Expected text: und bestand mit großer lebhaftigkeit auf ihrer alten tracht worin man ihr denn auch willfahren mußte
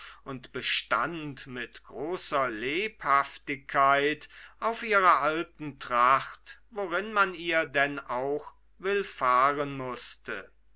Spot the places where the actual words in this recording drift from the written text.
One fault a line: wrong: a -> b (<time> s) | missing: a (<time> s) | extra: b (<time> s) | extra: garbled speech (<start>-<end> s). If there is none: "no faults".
no faults